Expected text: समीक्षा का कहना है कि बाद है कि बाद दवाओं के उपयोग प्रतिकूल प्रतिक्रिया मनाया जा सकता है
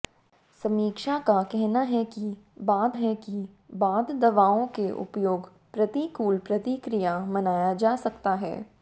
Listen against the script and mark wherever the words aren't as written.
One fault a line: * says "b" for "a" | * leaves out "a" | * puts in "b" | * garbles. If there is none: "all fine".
all fine